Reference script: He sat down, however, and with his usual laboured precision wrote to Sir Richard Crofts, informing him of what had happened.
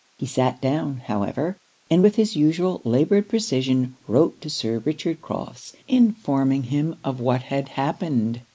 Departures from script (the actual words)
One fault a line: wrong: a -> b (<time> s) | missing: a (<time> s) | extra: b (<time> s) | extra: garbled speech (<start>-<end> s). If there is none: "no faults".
no faults